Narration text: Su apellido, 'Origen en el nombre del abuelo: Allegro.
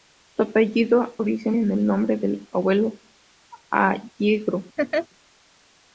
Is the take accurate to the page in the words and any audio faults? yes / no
no